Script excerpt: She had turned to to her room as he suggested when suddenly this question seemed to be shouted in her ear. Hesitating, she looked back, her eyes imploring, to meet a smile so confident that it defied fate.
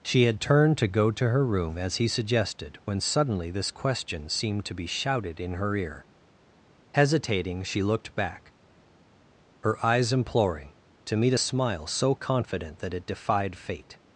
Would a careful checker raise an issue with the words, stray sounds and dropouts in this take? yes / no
yes